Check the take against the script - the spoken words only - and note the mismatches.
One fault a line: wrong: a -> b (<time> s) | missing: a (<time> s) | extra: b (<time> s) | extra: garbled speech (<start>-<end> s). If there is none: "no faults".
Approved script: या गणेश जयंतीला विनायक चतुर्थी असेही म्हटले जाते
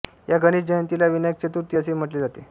no faults